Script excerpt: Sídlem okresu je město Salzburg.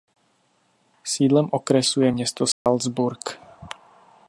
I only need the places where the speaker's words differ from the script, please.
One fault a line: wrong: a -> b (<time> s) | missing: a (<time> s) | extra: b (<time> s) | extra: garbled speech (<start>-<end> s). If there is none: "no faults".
no faults